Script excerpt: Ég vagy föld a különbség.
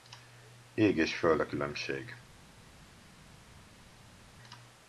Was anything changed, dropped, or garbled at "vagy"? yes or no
yes